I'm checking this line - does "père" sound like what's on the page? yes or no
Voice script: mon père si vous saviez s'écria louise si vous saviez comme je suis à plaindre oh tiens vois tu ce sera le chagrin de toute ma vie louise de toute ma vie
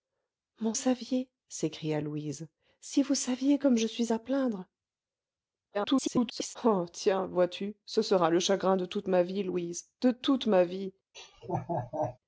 no